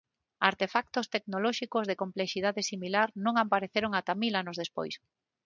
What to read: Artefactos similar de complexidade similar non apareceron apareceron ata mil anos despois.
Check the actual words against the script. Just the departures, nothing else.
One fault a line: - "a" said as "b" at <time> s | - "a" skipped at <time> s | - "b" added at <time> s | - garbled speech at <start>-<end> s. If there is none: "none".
- "similar" said as "tecnolóxicos" at 1.1 s
- "apareceron" skipped at 3.9 s